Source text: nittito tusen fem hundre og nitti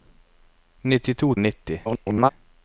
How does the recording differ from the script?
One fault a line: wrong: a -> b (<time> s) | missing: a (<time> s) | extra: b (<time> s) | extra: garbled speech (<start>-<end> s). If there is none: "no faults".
missing: tusen fem hundre (1.3 s)
extra: garbled speech (1.9-2.3 s)